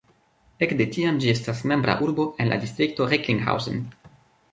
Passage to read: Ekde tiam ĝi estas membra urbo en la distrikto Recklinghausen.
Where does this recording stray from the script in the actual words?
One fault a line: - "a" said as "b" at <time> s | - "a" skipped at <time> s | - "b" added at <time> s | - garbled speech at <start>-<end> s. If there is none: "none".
none